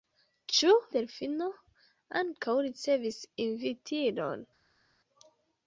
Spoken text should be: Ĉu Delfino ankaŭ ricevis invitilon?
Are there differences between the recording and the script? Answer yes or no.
no